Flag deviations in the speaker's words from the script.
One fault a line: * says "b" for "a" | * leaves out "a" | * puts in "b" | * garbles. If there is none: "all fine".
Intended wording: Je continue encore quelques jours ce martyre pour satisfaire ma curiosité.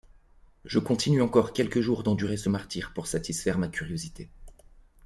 * puts in "d'endurer"